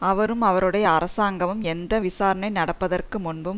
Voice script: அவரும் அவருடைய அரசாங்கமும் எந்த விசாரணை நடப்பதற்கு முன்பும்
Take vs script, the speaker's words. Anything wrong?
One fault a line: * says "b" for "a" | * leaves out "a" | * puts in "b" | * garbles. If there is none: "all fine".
all fine